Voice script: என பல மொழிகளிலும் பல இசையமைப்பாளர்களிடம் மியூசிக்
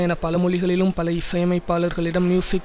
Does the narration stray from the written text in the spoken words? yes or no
no